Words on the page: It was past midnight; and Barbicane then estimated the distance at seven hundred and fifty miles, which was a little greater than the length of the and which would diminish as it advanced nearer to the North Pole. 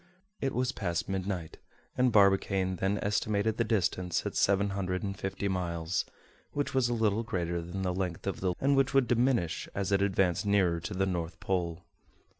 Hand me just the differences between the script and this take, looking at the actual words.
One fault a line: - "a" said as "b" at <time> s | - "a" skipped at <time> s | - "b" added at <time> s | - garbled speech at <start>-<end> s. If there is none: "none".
none